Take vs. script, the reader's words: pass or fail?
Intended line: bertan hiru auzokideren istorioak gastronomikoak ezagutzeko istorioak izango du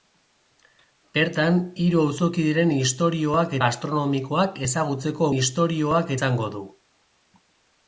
pass